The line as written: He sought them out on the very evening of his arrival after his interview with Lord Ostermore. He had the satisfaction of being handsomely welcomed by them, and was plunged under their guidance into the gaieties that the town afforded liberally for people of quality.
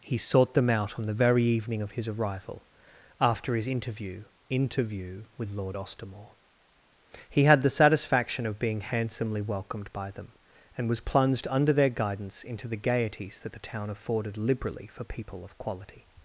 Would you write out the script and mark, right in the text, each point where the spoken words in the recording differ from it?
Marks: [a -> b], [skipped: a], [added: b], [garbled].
He sought them out on the very evening of his arrival after his interview [added: interview] with Lord Ostermore. He had the satisfaction of being handsomely welcomed by them, and was plunged under their guidance into the gaieties that the town afforded liberally for people of quality.